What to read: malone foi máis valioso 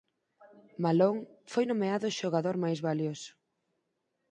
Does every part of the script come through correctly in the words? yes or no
no